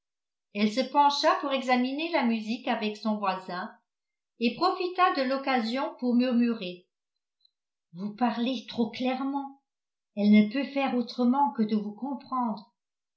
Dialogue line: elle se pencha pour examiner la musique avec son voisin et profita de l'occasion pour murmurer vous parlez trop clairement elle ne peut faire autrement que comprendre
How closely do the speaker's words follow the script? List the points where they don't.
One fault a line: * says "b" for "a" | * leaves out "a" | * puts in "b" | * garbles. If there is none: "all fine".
* puts in "de vous"